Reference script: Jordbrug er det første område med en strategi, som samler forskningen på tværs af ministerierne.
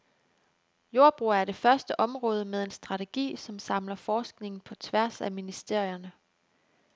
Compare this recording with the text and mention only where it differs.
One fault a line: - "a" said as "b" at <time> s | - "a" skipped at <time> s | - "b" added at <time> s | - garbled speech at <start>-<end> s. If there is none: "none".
none